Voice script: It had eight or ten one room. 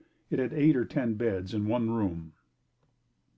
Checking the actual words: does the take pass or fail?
fail